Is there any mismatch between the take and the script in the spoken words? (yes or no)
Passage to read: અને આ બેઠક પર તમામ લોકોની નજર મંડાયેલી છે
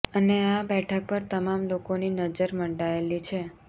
no